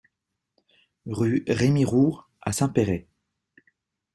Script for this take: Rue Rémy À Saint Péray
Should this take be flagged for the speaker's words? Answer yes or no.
yes